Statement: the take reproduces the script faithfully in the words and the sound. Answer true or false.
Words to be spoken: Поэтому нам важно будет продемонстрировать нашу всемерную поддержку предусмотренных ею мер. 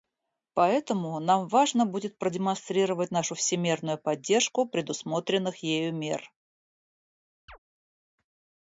false